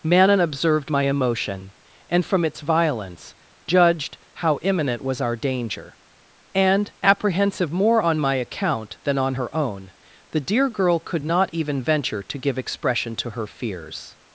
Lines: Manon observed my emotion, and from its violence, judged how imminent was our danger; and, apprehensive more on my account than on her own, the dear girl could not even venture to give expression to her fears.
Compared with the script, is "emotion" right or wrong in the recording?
right